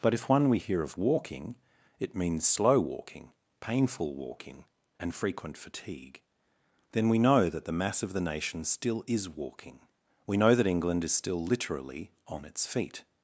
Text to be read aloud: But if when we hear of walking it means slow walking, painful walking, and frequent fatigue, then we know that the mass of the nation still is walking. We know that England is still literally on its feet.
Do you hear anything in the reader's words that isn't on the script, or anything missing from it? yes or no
yes